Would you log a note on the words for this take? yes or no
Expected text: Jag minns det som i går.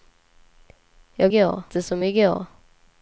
yes